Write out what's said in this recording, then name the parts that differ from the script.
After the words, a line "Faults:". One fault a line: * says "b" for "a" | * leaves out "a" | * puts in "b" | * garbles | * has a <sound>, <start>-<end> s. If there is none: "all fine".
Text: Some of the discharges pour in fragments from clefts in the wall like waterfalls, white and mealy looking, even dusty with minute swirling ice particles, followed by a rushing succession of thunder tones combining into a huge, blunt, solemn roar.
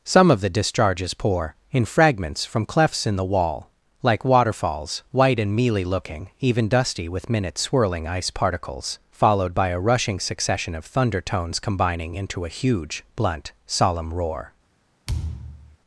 Some of the discharges pour in fragments from clefts in the wall like waterfalls, white and mealy looking, even dusty with minute swirling ice particles, followed by a rushing succession of thunder tones combining into a huge, blunt, solemn roar.
Faults:
* has a thud, 15.1-15.8 s